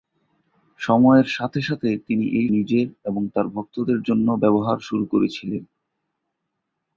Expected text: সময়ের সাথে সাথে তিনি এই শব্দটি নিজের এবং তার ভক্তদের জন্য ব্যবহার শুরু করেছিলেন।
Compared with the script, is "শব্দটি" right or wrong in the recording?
wrong